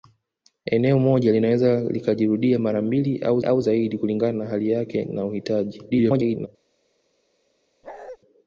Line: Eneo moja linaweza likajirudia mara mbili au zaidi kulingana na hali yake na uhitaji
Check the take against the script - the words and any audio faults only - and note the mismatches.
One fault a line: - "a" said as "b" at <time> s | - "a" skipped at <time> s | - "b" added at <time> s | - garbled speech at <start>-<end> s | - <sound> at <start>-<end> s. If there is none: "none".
- "au" added at 3.4 s
- garbled speech at 5.9-6.5 s
- bark at 7.8-8.2 s